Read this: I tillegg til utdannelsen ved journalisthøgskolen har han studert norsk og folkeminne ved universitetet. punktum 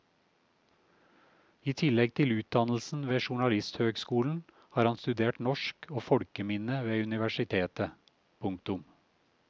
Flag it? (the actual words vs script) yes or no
no